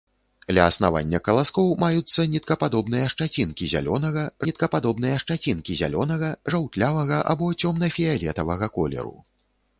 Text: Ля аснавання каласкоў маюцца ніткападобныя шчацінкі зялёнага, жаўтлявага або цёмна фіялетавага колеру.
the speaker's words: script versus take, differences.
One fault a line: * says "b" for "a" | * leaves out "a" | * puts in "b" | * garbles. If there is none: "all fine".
* puts in "ніткападобныя шчацінкі зялёнага"